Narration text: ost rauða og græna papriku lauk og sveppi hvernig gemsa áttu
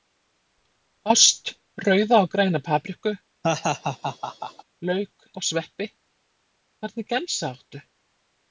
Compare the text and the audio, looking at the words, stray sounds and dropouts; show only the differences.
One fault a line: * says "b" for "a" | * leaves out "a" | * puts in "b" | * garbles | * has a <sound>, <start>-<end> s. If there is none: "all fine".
* has a laugh, 3.4-4.6 s